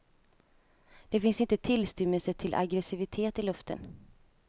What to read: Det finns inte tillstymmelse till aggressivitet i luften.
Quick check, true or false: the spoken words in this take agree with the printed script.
true